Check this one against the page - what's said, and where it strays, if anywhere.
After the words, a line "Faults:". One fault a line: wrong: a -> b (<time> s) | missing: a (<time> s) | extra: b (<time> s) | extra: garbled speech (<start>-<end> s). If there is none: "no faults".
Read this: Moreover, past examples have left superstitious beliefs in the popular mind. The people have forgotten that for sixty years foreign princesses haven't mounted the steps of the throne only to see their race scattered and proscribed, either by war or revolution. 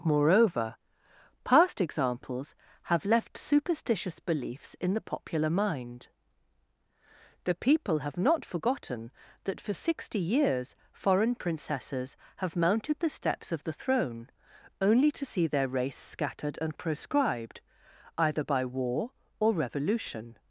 Moreover, past examples have left superstitious beliefs in the popular mind. The people have not forgotten that for sixty years foreign princesses have mounted the steps of the throne only to see their race scattered and proscribed, either by war or revolution.
Faults:
extra: not (8.2 s)
wrong: haven't -> have (12.4 s)